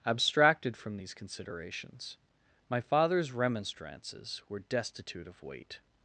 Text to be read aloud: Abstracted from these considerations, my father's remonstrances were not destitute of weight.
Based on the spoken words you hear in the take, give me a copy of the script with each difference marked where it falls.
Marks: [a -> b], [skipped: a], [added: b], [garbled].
Abstracted from these considerations, my father's remonstrances were [skipped: not] destitute of weight.